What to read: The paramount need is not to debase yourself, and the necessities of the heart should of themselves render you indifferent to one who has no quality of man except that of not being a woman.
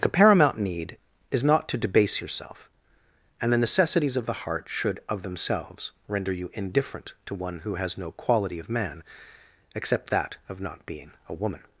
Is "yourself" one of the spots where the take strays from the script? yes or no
no